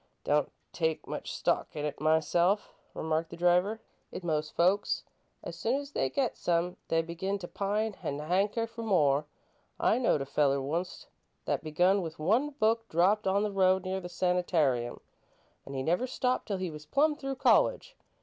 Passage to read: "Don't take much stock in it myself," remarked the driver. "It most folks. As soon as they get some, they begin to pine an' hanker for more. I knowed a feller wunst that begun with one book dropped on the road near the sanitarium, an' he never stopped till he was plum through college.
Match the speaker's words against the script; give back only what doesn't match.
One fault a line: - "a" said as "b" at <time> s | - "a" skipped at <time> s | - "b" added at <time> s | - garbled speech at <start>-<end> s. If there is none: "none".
none